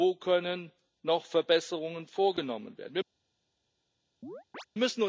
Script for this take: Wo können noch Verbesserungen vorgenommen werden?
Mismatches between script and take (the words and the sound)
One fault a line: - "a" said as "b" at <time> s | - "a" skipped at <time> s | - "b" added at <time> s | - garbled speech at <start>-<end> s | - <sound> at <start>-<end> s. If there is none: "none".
- chirp at 4.2-4.7 s